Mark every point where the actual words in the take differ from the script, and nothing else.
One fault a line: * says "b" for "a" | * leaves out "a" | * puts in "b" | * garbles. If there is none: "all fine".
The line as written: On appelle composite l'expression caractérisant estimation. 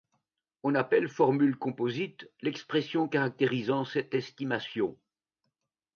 * puts in "formule"
* puts in "cette"